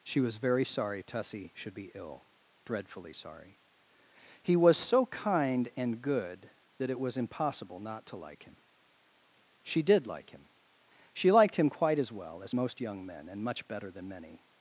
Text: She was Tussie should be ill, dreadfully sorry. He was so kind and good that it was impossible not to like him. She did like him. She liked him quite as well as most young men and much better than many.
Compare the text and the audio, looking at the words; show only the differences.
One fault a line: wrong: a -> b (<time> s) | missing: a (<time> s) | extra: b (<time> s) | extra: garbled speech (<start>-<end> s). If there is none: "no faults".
extra: very sorry (0.4 s)